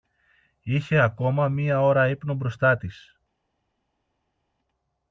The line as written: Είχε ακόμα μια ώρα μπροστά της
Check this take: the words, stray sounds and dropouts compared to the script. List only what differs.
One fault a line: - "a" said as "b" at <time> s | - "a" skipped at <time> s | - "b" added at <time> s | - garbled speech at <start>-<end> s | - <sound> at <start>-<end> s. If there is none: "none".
- "ύπνο" added at 2.1 s